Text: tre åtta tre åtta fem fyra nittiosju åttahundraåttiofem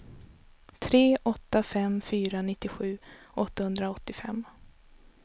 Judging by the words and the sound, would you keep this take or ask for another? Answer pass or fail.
fail